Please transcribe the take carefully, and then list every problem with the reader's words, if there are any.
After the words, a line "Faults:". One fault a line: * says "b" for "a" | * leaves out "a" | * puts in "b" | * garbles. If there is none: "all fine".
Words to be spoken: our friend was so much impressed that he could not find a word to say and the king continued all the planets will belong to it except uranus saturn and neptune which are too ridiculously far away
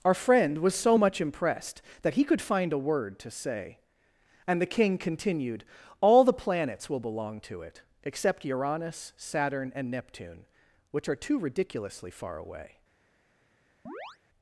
our friend was so much impressed that he could find a word to say and the king continued all the planets will belong to it except uranus saturn and neptune which are too ridiculously far away
Faults:
* leaves out "not"